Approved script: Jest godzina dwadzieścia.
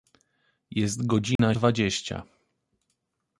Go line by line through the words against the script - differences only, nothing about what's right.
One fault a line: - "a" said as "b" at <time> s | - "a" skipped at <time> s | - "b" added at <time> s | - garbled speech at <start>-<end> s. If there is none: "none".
none